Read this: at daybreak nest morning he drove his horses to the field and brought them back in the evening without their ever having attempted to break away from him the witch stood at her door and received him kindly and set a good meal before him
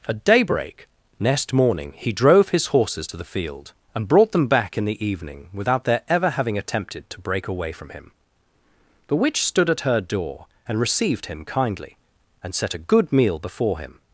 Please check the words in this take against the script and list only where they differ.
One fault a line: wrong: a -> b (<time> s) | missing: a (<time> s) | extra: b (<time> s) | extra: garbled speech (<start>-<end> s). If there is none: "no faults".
wrong: nest -> next (1.2 s)